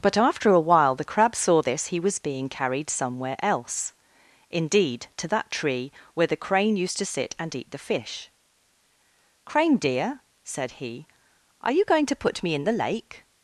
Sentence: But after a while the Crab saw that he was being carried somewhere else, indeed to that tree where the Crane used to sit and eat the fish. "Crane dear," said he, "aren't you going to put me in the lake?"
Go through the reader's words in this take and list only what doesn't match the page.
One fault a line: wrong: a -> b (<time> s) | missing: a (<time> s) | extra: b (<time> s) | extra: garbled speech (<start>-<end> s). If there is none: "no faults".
wrong: that -> this (1.6 s)
wrong: aren't -> are (11.6 s)